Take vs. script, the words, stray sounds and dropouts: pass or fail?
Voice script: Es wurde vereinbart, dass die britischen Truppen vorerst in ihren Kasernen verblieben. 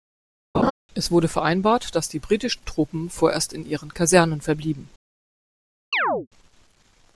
fail